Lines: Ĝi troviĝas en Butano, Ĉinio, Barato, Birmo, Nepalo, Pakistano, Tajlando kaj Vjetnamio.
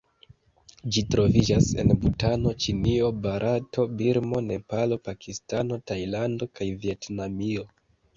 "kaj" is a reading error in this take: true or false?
false